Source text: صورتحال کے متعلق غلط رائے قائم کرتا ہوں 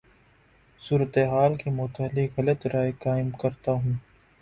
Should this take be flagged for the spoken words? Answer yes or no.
no